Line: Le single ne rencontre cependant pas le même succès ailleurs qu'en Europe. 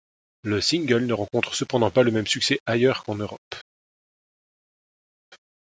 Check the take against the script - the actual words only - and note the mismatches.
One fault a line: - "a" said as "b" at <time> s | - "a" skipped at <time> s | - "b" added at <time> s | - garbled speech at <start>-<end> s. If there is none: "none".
none